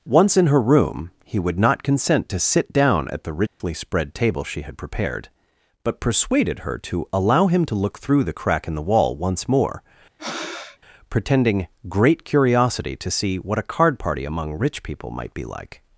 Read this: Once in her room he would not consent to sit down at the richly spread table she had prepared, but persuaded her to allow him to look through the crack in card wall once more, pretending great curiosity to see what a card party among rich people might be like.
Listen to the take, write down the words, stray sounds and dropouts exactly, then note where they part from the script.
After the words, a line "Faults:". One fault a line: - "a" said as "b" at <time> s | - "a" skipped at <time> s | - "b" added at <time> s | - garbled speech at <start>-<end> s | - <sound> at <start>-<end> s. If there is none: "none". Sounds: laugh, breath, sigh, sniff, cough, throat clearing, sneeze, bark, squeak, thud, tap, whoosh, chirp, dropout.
Once in her room he would not consent to sit down at the richly spread table she had prepared, but persuaded her to allow him to look through the crack in the wall once more, pretending great curiosity to see what a card party among rich people might be like.
Faults:
- dropout at 3.5-3.6 s
- "card" said as "the" at 8.8 s
- breath at 10.2-10.8 s